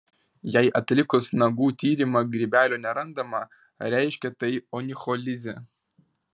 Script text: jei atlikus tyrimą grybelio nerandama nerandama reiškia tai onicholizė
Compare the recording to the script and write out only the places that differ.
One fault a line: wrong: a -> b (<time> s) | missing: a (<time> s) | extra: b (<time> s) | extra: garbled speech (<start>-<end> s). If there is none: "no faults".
extra: nagų (1.4 s)
missing: nerandama (3.4 s)